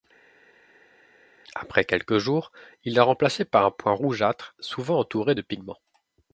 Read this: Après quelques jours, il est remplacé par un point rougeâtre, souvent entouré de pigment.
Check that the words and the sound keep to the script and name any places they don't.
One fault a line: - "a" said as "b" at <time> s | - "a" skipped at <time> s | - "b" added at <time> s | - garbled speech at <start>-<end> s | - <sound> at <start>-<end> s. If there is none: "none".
none